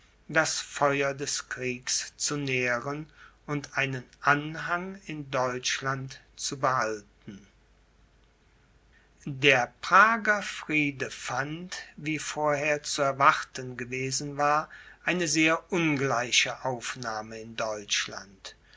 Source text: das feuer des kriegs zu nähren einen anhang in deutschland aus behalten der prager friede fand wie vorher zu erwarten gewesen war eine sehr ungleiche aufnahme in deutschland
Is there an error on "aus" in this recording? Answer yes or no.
yes